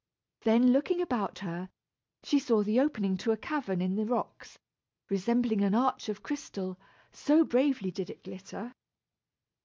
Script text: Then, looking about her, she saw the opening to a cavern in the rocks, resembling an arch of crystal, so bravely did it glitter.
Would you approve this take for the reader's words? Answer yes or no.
yes